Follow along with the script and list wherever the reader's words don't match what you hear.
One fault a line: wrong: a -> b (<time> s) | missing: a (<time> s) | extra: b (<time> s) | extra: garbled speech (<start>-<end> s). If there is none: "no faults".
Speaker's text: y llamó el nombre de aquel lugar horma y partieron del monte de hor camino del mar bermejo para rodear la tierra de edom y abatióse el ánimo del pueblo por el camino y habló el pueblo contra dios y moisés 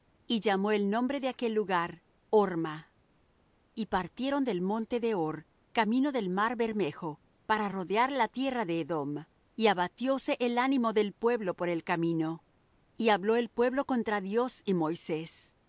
no faults